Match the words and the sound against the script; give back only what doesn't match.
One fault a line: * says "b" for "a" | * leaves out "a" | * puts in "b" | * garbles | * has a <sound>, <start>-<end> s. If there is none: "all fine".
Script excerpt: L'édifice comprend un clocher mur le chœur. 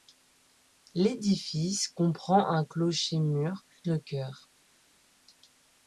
all fine